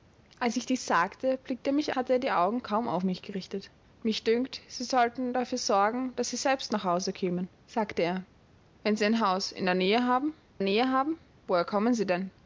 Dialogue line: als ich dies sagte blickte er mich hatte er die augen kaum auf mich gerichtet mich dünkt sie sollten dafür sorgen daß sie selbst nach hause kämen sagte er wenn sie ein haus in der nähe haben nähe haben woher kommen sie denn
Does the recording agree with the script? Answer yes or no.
yes